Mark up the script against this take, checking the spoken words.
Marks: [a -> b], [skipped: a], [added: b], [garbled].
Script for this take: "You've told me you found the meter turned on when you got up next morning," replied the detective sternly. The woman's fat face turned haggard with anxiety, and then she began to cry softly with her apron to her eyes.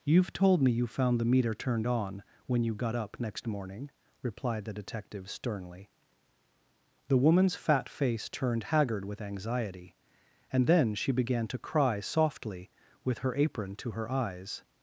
"You've told me you found the meter turned on when you got up next morning," replied the detective sternly. The woman's fat face turned haggard with anxiety, and then she began to cry softly with her apron to her eyes.